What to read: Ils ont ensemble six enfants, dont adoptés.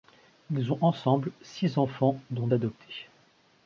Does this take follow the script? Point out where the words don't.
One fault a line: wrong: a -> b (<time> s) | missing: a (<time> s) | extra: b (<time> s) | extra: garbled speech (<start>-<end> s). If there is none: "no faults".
no faults